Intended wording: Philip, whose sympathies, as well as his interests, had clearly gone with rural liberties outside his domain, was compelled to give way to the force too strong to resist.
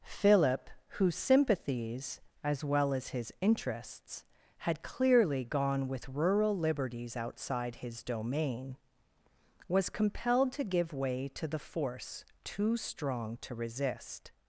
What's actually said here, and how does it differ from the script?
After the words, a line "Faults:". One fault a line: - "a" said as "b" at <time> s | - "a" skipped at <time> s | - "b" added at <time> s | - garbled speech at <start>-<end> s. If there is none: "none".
Philip, whose sympathies, as well as his interests, had clearly gone with rural liberties outside his domain, was compelled to give way to the force too strong to resist.
Faults:
none